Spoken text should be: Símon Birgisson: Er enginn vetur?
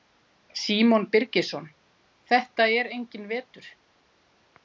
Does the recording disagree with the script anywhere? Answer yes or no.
yes